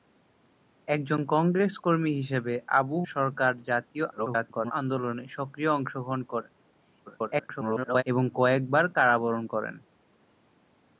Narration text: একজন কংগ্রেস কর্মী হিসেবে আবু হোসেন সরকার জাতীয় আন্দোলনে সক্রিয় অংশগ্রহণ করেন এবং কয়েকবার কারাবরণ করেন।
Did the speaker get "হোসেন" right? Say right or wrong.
wrong